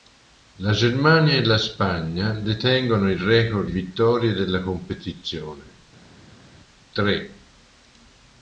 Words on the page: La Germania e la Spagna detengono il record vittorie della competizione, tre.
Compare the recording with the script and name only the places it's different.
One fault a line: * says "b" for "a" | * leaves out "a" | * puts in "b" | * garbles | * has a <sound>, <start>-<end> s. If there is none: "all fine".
all fine